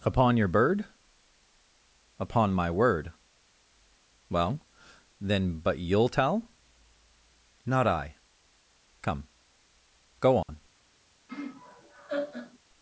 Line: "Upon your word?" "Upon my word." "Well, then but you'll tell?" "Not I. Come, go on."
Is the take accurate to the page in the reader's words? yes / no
no